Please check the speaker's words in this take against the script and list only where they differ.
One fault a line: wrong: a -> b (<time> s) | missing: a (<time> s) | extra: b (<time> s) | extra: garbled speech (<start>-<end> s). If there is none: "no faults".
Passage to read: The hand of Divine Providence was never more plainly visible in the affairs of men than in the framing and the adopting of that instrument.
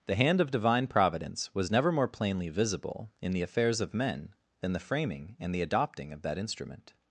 missing: in (4.7 s)